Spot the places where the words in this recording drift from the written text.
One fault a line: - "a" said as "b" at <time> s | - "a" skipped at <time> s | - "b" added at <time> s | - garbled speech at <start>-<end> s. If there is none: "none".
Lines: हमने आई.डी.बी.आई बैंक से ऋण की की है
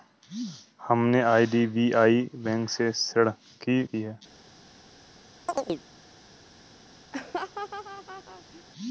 none